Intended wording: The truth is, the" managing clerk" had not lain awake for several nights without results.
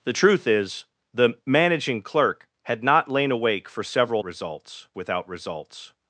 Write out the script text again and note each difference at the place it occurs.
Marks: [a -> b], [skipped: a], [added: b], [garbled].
The truth is, the" managing clerk" had not lain awake for several [nights -> results] without results.